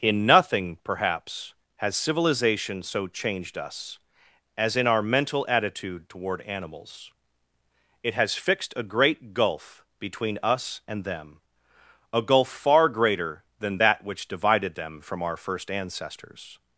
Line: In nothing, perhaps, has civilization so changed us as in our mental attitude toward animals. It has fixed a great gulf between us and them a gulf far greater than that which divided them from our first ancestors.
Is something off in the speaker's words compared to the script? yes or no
no